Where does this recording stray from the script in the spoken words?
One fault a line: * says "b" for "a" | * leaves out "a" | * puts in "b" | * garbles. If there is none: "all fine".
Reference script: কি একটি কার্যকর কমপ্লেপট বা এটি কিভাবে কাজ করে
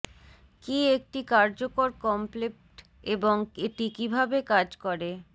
* says "এবং" for "বা"